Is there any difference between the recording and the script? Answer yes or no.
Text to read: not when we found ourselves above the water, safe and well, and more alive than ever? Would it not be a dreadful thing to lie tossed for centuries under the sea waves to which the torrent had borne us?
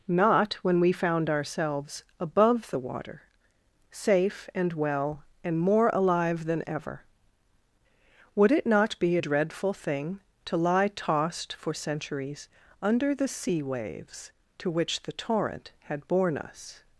no